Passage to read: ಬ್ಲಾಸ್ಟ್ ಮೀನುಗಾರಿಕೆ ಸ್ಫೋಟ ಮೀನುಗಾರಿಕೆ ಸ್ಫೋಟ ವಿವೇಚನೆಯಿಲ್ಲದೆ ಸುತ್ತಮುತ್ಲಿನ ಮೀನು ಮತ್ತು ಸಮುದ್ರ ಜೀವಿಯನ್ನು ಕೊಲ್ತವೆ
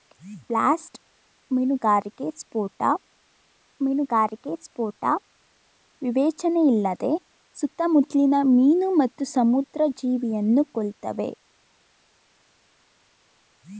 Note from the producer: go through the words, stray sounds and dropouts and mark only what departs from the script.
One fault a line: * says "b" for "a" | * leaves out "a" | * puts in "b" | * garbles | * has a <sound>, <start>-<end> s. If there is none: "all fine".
all fine